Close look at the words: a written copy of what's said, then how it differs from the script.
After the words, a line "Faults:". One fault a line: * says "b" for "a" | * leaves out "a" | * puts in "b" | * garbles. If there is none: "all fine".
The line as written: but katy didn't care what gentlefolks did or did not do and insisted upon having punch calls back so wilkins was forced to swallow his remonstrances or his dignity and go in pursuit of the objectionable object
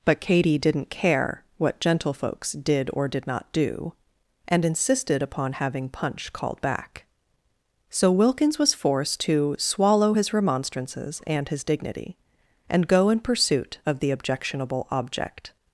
but katy didn't care what gentlefolks did or did not do and insisted upon having punch called back so wilkins was forced to swallow his remonstrances and his dignity and go in pursuit of the objectionable object
Faults:
* says "called" for "calls"
* says "and" for "or"